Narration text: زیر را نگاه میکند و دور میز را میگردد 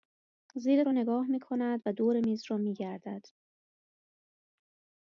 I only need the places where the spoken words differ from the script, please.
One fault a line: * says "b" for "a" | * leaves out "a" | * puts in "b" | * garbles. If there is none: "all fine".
all fine